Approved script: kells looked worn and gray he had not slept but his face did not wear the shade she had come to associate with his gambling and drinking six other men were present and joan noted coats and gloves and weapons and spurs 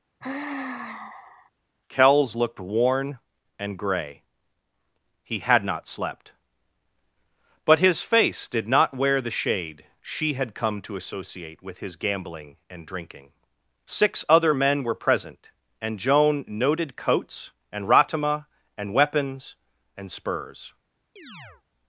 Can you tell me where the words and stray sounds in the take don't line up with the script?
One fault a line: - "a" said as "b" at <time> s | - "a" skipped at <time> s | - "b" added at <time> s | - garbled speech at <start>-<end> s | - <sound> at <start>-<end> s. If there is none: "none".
- sigh at 0.2-1.5 s
- "gloves" said as "ratama" at 17.9 s
- chirp at 21.2-21.6 s